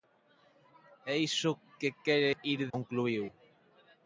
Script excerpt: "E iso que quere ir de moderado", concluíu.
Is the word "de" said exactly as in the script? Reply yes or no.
no